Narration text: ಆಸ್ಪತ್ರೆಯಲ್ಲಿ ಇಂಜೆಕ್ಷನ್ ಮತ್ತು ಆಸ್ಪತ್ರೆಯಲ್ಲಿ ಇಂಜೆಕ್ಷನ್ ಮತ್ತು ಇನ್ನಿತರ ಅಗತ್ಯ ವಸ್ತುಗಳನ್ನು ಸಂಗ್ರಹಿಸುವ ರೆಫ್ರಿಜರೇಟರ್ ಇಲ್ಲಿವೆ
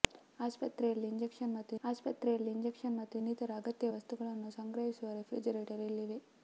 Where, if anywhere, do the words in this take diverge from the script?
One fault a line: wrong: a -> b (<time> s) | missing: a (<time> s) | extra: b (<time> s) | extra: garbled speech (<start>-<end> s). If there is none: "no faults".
no faults